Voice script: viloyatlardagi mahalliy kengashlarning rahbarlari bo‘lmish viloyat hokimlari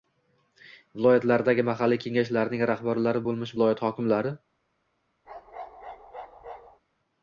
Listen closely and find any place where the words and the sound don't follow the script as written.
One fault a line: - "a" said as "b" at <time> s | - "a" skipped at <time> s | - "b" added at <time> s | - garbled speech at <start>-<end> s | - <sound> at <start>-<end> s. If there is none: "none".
- bark at 5.3-6.8 s